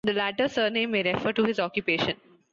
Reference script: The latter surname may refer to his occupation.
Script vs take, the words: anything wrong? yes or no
no